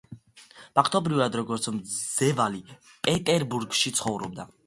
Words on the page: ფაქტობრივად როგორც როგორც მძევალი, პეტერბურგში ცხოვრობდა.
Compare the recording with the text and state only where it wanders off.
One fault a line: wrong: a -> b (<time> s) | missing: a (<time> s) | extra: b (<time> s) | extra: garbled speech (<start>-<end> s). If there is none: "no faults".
missing: როგორც (1.7 s)